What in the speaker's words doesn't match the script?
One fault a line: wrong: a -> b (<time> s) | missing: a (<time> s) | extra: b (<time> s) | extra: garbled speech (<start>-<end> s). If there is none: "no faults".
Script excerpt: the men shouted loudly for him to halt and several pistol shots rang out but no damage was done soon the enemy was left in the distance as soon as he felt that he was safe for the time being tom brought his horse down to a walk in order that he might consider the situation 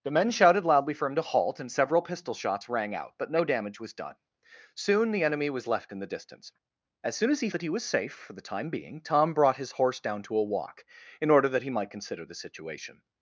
missing: felt (7.5 s)